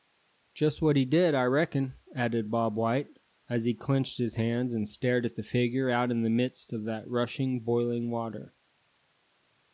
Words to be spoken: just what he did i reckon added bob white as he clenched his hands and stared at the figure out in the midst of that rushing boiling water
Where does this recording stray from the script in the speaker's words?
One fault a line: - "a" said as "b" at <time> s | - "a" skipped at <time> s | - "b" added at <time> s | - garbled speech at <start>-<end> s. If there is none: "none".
none